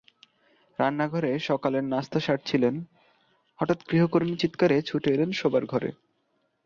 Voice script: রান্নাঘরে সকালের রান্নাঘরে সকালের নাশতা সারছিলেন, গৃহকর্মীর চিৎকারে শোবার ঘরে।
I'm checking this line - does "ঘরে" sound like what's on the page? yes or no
yes